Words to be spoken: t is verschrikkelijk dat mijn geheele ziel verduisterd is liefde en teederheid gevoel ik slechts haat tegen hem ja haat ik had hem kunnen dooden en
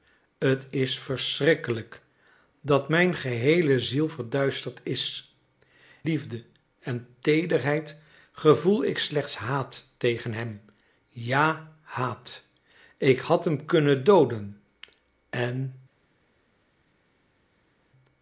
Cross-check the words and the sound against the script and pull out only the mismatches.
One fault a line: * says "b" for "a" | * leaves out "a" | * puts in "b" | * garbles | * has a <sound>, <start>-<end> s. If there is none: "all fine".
all fine